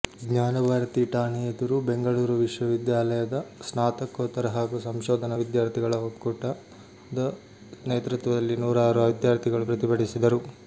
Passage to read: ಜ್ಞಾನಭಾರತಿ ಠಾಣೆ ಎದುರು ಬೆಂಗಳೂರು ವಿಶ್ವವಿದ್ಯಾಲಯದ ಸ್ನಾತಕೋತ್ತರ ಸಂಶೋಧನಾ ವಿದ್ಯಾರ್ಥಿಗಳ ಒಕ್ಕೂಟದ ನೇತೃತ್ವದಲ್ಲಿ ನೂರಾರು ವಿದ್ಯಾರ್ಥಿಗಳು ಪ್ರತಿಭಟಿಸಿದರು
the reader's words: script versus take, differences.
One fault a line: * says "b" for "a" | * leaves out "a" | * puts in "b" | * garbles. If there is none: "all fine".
* puts in "ಹಾಗೂ"